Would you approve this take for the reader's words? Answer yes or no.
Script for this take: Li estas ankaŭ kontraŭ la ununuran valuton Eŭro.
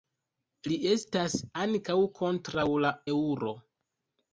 no